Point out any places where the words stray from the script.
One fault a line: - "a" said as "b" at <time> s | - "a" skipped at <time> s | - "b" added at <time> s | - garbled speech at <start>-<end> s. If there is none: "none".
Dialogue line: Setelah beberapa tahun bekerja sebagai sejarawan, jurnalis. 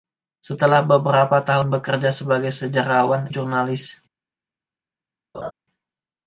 none